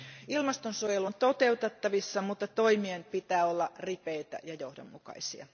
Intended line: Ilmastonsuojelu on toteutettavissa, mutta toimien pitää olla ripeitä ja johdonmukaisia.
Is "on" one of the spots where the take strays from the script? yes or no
no